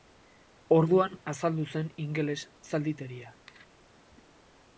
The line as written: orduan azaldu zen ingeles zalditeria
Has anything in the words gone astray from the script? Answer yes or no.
no